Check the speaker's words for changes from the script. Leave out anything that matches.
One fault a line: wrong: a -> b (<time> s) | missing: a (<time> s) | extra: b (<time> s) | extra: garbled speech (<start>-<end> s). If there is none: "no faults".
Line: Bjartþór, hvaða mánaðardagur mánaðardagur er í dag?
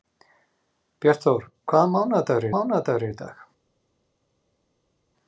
no faults